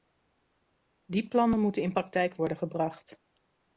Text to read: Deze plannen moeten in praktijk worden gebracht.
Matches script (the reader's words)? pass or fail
fail